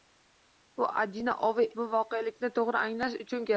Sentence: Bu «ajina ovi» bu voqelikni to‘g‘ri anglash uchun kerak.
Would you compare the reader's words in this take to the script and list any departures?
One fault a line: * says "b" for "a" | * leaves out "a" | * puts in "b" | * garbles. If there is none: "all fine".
all fine